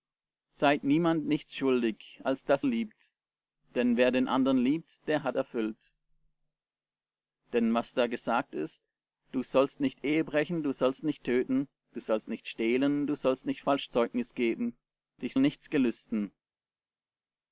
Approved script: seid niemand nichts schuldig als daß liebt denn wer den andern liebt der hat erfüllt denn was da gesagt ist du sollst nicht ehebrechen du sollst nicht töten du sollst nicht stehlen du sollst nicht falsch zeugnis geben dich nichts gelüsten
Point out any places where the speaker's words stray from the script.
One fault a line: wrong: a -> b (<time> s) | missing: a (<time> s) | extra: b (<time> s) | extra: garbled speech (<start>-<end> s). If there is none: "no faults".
no faults